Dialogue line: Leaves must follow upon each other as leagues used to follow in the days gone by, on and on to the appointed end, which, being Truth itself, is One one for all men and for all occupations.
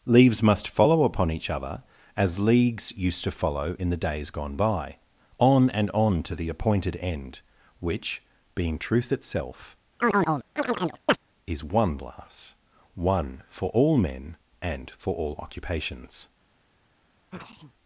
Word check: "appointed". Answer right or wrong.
right